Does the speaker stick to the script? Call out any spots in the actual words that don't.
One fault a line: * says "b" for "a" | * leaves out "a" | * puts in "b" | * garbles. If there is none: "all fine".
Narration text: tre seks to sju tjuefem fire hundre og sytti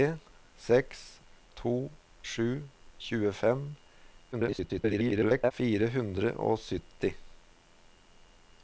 * garbles